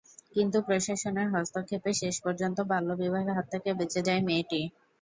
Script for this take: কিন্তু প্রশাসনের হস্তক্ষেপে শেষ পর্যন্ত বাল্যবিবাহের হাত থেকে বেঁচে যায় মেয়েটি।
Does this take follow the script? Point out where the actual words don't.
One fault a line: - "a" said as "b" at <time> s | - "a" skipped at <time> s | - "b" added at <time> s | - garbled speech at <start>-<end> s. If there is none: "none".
none